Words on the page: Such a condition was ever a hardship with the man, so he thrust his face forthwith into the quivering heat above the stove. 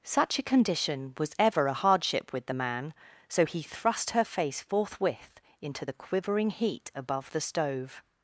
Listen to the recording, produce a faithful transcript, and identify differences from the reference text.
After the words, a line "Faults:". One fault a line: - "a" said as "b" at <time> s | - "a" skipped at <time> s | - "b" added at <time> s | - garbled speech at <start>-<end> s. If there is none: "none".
Such a condition was ever a hardship with the man, so he thrust her face forthwith into the quivering heat above the stove.
Faults:
- "his" said as "her" at 4.1 s